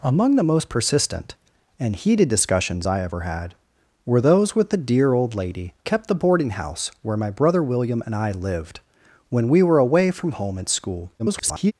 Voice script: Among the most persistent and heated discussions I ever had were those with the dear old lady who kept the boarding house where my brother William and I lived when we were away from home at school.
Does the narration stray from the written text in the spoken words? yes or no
yes